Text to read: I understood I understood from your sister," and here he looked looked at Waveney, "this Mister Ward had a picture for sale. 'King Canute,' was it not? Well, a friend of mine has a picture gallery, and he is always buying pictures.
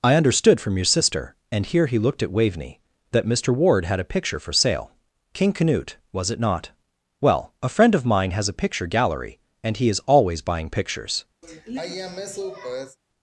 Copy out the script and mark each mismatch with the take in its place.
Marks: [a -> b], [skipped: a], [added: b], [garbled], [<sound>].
I understood [skipped: I understood] from your sister," and here he looked [skipped: looked] at Waveney, ["this -> that] Mister Ward had a picture for sale. 'King Canute,' was it not? Well, a friend of mine has a picture gallery, and he is always buying pictures. [sigh]